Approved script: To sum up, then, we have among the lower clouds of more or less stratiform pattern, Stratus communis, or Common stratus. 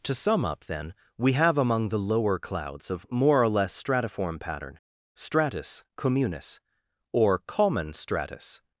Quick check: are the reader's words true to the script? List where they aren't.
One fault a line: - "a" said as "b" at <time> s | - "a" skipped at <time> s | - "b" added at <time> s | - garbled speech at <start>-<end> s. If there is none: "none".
none